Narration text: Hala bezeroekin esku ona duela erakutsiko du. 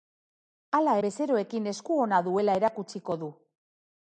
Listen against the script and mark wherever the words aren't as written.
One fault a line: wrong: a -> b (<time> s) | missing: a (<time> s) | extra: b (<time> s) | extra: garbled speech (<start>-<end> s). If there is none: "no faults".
no faults